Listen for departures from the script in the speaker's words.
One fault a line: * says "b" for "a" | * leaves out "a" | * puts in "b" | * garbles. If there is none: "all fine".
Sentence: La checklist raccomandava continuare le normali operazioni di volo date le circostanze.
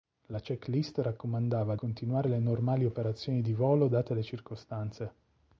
all fine